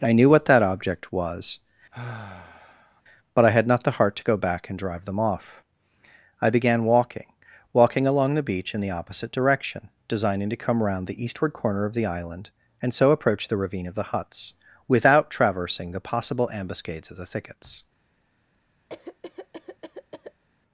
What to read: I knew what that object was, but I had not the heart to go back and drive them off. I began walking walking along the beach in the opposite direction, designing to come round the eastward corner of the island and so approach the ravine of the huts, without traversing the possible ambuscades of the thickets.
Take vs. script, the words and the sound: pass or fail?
fail